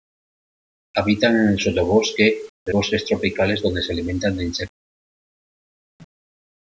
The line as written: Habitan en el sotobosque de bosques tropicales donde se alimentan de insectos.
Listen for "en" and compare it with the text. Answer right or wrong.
right